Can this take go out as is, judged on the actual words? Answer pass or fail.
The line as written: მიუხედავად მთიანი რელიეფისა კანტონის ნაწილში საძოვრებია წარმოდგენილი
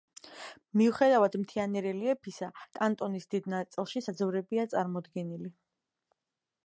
fail